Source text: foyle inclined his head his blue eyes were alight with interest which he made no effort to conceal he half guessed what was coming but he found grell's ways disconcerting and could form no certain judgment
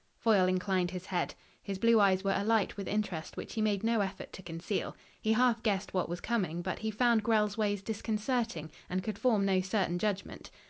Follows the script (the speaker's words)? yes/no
yes